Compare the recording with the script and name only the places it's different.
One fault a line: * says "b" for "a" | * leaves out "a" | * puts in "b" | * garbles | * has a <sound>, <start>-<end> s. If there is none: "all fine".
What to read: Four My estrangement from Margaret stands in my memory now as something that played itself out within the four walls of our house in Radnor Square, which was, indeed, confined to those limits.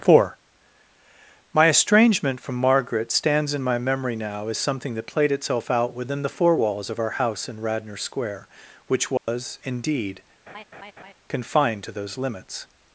* has a dropout, 9.2-9.3 s
* has a laugh, 10.5-11.1 s